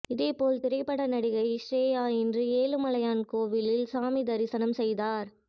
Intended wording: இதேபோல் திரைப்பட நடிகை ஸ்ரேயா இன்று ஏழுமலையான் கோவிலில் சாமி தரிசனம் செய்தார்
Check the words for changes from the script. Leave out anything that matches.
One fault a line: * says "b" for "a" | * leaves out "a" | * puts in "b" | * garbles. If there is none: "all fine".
all fine